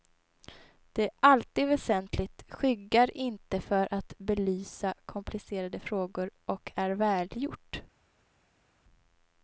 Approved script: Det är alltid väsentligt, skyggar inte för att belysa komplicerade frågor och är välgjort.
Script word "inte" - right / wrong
right